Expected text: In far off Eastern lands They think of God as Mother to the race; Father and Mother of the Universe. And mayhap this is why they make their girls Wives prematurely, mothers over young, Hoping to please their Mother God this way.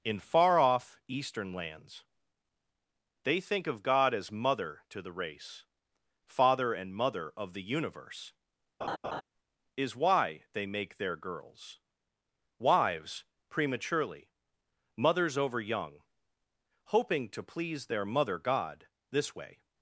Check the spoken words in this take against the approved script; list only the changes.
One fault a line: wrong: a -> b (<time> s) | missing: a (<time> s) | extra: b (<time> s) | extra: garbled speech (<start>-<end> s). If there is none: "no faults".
missing: And mayhap this (8.3 s)